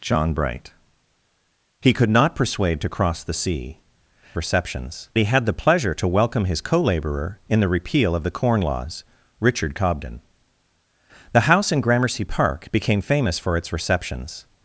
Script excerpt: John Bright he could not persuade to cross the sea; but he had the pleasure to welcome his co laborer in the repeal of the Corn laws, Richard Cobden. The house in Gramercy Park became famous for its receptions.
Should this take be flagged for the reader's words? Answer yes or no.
yes